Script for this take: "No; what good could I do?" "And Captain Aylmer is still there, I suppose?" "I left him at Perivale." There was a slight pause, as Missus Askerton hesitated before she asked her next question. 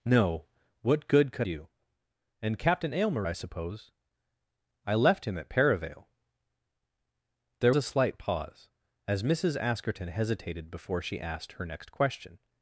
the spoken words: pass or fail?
fail